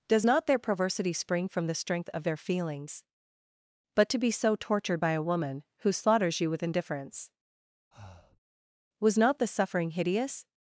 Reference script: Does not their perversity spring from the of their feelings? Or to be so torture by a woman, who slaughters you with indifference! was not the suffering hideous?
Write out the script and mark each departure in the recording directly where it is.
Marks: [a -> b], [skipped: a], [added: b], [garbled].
Does not their perversity spring from the [added: strength] of their feelings? [Or -> But] to be so [torture -> tortured] by a woman, who slaughters you with indifference! was not the suffering hideous?